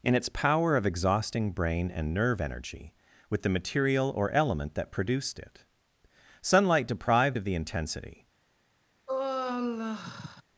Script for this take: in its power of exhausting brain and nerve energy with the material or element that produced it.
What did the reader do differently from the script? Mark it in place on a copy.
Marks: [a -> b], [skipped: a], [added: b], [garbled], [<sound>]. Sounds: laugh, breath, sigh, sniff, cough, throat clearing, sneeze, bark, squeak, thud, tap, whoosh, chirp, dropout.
in its power of exhausting brain and nerve energy with the material or element that produced it. [added: Sunlight deprived of the intensity] [sigh]